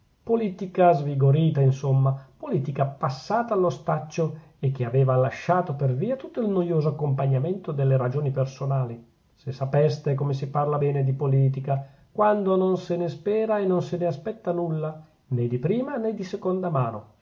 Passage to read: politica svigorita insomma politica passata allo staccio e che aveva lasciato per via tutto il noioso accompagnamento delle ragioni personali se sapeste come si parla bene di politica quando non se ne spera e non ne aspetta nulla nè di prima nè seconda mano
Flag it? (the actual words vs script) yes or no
yes